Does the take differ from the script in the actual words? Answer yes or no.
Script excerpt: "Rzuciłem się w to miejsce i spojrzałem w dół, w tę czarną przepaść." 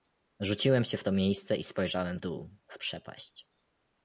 yes